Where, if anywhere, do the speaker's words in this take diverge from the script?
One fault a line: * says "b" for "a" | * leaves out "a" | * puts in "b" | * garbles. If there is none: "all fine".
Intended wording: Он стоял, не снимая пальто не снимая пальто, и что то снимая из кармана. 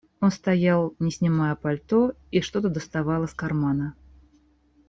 * leaves out "не снимая пальто"
* says "доставал" for "снимая"